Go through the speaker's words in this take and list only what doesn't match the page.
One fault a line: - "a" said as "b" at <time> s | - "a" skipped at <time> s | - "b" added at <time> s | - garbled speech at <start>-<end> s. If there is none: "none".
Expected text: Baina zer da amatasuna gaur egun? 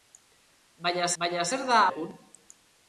- "baina" added at 1.2 s
- "amatasuna gaur" skipped at 1.8 s